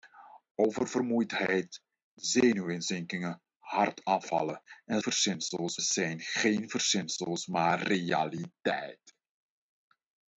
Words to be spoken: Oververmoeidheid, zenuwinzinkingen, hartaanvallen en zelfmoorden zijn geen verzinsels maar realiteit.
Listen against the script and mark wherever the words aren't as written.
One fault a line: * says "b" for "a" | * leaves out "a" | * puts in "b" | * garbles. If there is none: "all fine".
* says "verzinsels" for "zelfmoorden"